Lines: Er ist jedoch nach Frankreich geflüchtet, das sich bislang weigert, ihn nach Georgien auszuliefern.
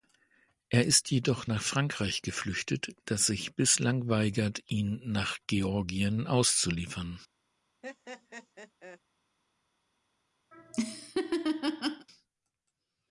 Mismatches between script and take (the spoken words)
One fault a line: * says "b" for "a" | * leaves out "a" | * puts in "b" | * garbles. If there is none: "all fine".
all fine